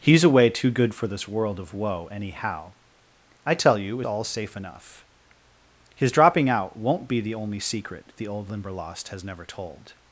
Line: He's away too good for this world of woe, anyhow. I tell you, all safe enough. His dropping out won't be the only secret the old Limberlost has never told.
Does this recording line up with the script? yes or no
yes